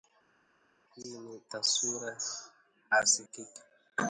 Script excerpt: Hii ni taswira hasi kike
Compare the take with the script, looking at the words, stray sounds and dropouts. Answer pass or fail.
pass